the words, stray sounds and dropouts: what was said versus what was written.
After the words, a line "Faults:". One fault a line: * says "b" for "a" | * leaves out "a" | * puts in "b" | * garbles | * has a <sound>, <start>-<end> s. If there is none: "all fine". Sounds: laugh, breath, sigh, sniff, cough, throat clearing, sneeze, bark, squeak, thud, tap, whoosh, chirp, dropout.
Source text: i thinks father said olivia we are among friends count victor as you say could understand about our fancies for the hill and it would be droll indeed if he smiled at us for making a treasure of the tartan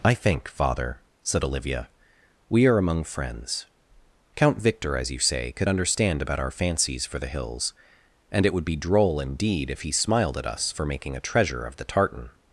i think father said olivia we are among friends count victor as you say could understand about our fancies for the hills and it would be droll indeed if he smiled at us for making a treasure of the tartan
Faults:
* says "think" for "thinks"
* says "hills" for "hill"